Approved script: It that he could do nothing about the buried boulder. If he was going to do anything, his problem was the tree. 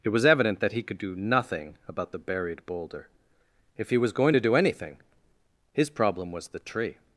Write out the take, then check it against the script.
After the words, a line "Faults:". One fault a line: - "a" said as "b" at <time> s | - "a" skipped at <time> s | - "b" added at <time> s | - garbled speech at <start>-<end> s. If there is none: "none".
It was evident that he could do nothing about the buried boulder. If he was going to do anything, his problem was the tree.
Faults:
- "was evident" added at 0.1 s